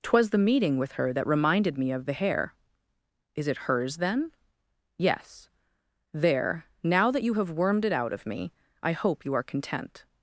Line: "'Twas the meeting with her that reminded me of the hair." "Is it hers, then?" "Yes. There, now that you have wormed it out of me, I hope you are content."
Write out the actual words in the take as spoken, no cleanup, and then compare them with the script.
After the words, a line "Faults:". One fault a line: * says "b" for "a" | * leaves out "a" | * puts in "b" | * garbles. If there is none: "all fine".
"'Twas the meeting with her that reminded me of the hair." "Is it hers, then?" "Yes. There, now that you have wormed it out of me, I hope you are content."
Faults:
all fine